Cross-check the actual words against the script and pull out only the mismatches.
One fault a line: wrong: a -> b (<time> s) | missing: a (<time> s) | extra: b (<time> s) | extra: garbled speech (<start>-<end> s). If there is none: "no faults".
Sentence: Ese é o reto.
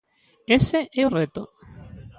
no faults